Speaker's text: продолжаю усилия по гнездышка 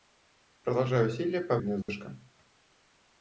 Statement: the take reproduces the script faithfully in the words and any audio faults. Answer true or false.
false